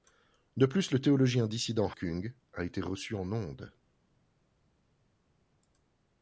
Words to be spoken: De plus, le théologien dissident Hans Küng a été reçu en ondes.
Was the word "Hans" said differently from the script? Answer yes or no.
yes